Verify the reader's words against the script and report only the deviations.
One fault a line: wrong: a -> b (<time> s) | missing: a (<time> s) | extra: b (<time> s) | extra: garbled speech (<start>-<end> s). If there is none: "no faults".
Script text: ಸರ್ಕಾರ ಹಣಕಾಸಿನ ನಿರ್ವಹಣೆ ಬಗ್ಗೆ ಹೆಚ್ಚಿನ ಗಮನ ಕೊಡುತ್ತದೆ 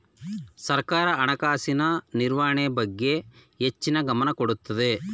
no faults